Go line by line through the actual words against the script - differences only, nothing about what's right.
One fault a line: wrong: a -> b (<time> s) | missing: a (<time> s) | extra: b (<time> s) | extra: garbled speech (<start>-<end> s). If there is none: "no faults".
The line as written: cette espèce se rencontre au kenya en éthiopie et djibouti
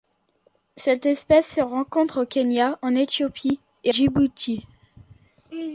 no faults